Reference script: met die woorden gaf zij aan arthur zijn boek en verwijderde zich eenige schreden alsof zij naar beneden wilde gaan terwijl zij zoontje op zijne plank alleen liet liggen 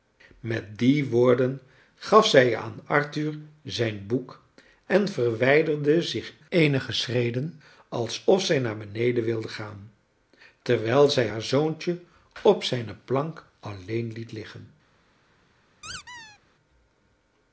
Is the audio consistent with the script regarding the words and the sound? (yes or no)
no